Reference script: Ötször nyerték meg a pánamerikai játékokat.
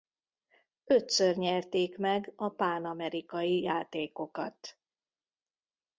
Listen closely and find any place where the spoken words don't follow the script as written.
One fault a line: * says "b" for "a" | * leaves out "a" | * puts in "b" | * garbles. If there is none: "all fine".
all fine